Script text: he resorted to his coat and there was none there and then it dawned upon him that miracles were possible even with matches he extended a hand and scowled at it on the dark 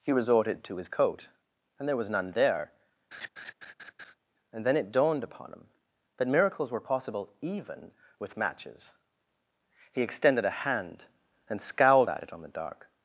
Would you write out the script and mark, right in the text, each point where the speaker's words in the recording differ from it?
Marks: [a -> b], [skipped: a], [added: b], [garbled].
he resorted to his coat and there was none there and then it dawned upon him that miracles were possible even with matches he extended a hand and scowled at it on the dark